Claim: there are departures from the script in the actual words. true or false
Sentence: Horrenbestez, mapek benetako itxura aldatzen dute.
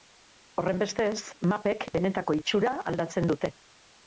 false